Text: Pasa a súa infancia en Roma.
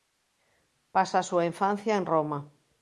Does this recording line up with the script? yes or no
yes